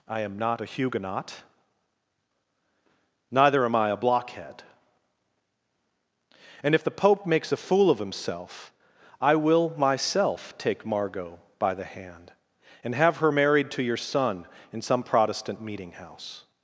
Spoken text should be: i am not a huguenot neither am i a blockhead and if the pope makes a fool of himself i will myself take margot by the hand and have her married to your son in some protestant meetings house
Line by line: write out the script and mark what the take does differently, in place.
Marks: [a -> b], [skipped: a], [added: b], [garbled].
i am not a huguenot neither am i a blockhead and if the pope makes a fool of himself i will myself take margot by the hand and have her married to your son in some protestant [meetings -> meeting] house